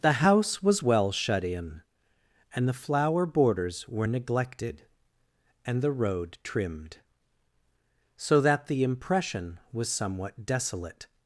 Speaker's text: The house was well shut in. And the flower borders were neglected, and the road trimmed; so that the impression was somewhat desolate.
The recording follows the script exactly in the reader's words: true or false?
true